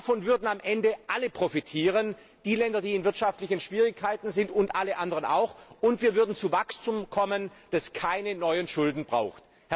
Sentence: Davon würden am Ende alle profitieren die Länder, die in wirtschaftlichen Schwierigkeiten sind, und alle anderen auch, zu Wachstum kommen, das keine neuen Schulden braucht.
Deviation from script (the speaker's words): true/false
true